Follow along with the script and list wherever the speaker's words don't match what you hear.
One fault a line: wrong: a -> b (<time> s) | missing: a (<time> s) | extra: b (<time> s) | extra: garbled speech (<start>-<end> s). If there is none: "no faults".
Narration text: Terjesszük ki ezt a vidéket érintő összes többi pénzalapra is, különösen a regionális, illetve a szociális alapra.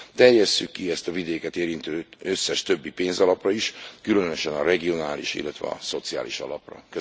no faults